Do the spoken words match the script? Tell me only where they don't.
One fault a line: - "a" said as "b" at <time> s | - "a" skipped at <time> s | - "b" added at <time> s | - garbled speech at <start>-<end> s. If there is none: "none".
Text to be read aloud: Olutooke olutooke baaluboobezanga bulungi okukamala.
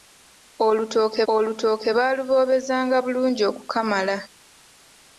none